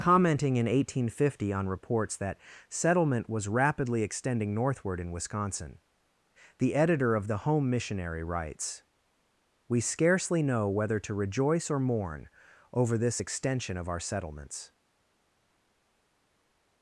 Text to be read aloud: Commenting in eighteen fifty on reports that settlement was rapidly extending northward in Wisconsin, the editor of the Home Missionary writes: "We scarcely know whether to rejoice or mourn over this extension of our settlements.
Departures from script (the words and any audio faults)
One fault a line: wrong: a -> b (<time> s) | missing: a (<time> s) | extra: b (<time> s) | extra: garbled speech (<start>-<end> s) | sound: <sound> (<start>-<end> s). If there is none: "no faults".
no faults